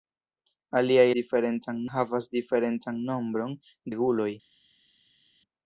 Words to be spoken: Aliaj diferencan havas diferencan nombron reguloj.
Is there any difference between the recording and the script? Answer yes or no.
no